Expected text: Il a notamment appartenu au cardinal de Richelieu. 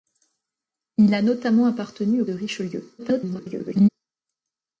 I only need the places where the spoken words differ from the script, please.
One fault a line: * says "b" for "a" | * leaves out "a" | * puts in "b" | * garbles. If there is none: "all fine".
* leaves out "cardinal"
* garbles